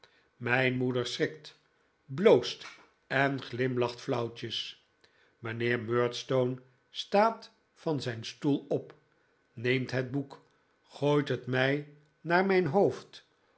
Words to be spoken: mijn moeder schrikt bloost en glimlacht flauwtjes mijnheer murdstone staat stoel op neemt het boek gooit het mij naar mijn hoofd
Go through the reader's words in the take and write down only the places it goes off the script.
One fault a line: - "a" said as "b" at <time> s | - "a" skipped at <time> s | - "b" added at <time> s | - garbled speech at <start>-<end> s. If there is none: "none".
- "van zijn" added at 7.7 s